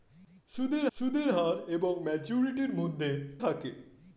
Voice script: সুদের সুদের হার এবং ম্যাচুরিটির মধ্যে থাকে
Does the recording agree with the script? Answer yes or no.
yes